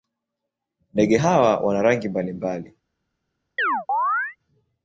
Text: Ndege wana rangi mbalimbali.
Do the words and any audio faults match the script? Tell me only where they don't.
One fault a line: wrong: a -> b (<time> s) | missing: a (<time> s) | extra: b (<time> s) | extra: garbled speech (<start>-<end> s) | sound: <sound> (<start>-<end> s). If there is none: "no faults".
extra: hawa (1.1 s)
sound: chirp (3.6-4.4 s)